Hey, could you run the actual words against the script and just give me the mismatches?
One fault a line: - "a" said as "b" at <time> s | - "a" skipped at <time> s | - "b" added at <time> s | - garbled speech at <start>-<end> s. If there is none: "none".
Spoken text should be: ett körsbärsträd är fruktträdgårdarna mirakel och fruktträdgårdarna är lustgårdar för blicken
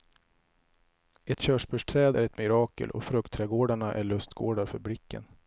- "fruktträdgårdarna" said as "ett" at 2.2 s